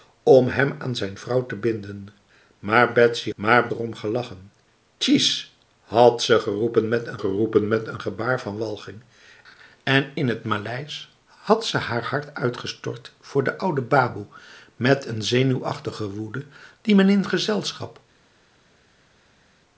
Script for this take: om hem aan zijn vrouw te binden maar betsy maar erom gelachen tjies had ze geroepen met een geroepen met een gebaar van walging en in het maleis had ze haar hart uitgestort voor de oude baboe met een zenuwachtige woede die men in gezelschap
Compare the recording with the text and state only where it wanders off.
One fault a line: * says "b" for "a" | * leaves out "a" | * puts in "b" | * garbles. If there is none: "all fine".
all fine